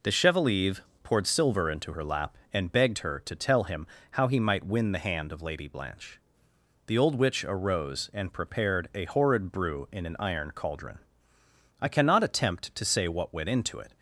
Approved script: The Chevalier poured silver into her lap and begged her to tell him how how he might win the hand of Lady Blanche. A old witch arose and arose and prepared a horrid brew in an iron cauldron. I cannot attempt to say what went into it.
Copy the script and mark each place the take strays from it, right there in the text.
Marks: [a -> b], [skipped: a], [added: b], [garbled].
The Chevalier poured silver into her lap and begged her to tell him how [skipped: how] he might win the hand of Lady Blanche. [A -> The] old witch arose and [skipped: arose and] prepared a horrid brew in an iron cauldron. I cannot attempt to say what went into it.